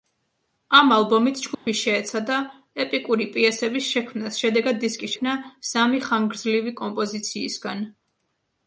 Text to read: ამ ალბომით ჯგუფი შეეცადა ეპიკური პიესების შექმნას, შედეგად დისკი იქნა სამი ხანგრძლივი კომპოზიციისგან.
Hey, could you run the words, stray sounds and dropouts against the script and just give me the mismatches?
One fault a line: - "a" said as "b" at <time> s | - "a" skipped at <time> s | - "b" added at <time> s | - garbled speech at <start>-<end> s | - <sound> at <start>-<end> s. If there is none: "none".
- dropout at 1.5-1.7 s